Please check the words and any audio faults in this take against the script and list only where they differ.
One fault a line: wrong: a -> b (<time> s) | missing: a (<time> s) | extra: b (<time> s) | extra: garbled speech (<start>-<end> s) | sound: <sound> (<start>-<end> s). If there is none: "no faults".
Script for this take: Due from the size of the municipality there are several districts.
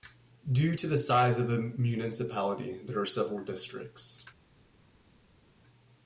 wrong: from -> to (0.7 s)